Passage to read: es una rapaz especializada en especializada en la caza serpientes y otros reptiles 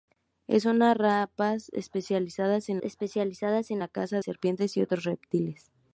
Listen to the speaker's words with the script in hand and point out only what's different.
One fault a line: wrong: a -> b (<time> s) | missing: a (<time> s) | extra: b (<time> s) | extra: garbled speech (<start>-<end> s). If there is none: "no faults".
no faults